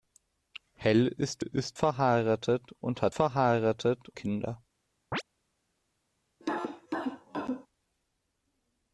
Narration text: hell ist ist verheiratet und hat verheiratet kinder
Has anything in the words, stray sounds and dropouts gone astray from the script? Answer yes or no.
yes